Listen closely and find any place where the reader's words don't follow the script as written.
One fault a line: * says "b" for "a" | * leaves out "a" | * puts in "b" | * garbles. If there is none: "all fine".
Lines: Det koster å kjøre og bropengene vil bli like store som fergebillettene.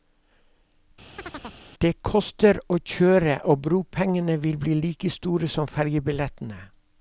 all fine